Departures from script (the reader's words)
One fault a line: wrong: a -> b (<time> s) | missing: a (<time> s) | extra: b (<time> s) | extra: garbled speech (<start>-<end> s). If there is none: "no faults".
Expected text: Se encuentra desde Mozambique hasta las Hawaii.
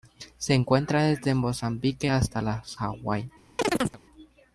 no faults